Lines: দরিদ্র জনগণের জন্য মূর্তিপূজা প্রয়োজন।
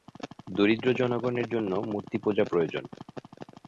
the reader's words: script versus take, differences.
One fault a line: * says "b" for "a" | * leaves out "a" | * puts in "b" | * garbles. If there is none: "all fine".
all fine